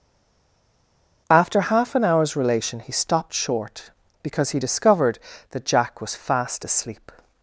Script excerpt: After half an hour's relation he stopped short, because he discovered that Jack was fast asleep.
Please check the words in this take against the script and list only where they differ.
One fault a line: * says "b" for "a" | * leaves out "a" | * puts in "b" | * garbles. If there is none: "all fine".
all fine